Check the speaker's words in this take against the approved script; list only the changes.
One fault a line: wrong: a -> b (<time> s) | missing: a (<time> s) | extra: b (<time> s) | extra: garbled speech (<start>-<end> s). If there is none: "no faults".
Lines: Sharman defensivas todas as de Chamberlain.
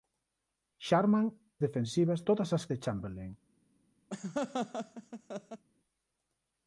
no faults